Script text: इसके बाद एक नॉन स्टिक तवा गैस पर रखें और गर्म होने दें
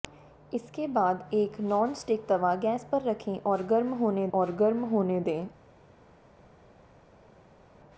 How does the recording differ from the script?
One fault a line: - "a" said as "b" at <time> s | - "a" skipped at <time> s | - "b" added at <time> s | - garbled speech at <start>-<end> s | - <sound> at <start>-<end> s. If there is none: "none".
- "और गर्म होने" added at 4.3 s